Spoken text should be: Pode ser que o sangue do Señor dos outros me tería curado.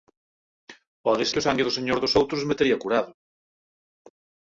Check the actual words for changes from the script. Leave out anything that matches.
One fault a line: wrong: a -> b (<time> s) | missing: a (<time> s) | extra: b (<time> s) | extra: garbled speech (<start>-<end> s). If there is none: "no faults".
missing: ser (1.2 s)